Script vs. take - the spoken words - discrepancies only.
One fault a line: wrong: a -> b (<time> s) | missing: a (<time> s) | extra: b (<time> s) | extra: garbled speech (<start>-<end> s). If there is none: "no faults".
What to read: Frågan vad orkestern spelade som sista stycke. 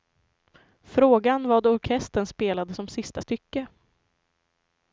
no faults